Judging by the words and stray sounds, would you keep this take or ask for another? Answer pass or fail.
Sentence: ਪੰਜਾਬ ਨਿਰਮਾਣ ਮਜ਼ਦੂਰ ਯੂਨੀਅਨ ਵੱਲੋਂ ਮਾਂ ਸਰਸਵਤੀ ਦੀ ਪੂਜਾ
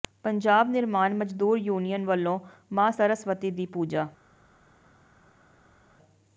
pass